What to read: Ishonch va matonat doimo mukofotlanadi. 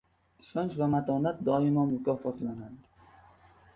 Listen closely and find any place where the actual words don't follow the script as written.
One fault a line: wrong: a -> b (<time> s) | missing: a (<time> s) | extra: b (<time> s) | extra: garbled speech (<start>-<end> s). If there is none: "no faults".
no faults